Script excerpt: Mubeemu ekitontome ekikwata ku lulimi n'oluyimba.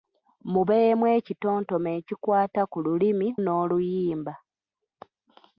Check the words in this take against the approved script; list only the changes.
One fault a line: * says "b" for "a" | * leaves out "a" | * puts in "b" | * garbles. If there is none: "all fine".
all fine